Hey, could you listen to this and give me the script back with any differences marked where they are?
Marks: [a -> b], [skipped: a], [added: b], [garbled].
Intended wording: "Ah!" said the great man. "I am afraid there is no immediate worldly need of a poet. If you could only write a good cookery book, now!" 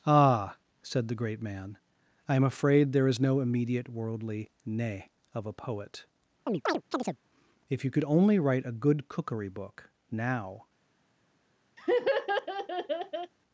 "Ah!" said the great man. "I am afraid there is no immediate worldly [need -> ne] of a poet. If you could only write a good cookery book, now!"